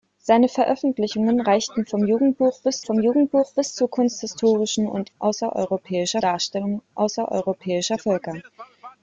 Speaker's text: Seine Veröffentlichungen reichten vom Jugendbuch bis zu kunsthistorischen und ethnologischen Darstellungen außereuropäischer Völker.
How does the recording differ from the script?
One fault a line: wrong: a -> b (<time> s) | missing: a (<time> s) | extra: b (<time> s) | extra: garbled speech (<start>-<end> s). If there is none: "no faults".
extra: vom Jugendbuch bis (2.8 s)
wrong: ethnologischen -> außereuropäischer (5.2 s)